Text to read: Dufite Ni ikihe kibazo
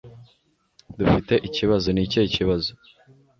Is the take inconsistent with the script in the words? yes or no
yes